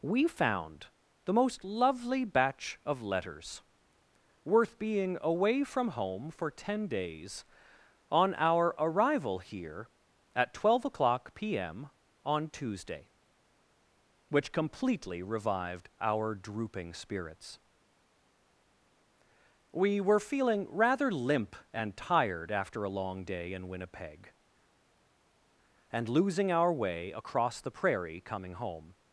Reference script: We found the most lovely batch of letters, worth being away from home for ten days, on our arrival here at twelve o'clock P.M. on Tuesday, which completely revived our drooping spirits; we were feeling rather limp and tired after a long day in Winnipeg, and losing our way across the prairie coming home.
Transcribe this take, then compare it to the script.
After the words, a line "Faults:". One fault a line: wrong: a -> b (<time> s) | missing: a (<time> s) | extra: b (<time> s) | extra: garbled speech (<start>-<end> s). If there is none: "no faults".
We found the most lovely batch of letters, worth being away from home for ten days, on our arrival here at twelve o'clock P.M. on Tuesday, which completely revived our drooping spirits; we were feeling rather limp and tired after a long day in Winnipeg, and losing our way across the prairie coming home.
Faults:
no faults